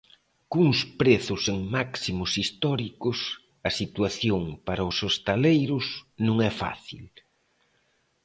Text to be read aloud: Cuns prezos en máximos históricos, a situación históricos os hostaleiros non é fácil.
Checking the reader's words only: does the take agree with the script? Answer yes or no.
no